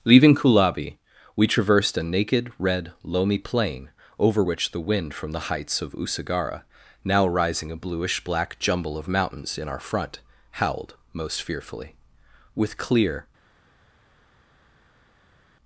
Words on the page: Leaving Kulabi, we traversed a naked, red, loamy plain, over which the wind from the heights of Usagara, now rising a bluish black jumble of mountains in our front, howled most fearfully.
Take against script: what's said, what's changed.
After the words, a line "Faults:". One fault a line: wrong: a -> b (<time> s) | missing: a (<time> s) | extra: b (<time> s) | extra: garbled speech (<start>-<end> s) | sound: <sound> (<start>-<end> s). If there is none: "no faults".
Leaving Kulabi, we traversed a naked, red, loamy plain, over which the wind from the heights of Usagara, now rising a bluish black jumble of mountains in our front, howled most fearfully. With clear
Faults:
extra: With clear (12.5 s)